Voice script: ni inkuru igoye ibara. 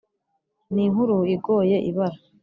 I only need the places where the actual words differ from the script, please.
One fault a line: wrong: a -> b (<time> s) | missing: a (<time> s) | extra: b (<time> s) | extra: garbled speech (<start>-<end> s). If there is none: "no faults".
no faults